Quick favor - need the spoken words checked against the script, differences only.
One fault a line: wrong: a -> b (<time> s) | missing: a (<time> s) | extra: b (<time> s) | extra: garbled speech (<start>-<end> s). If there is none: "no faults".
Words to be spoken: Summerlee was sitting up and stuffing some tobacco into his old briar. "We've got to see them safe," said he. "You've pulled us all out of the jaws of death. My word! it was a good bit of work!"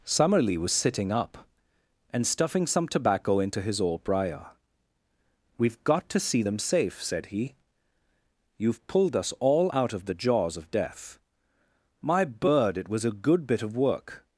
wrong: word -> bird (12.2 s)